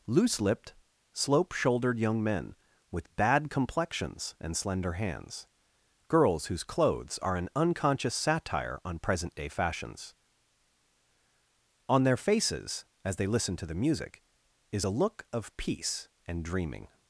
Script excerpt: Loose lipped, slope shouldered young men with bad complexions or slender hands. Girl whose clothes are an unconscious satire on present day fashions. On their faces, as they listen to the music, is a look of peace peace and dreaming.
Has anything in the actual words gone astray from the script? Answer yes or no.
yes